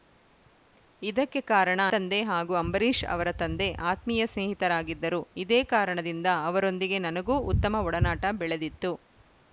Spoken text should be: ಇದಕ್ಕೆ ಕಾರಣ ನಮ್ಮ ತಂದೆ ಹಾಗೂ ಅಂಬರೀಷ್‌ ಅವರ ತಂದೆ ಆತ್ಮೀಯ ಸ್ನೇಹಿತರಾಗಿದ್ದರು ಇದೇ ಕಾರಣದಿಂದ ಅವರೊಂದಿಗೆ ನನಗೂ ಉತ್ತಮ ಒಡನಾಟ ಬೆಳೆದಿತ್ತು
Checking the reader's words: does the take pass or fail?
fail